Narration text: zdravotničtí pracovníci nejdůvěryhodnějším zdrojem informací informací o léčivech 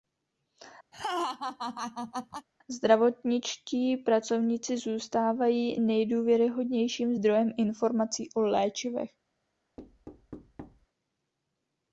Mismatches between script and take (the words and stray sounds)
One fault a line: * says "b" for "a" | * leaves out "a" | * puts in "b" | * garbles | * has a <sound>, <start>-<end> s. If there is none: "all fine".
* has a laugh, 0.9-2.5 s
* puts in "zůstávají"
* leaves out "informací"
* has a thud, 9.8-10.9 s